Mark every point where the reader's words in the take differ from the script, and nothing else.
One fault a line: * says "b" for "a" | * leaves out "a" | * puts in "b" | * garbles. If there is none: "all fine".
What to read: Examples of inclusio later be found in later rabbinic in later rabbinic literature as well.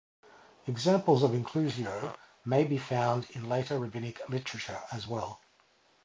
* says "may" for "later"
* leaves out "in later rabbinic"